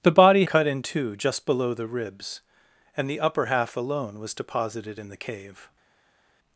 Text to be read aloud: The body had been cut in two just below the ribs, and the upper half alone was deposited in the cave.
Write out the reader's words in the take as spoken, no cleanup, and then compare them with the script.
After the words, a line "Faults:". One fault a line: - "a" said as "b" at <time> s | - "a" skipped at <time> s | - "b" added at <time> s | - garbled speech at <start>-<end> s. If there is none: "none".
The body cut in two just below the ribs, and the upper half alone was deposited in the cave.
Faults:
- "had been" skipped at 0.5 s